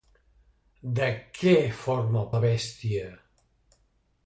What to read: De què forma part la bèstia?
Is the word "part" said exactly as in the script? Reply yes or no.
no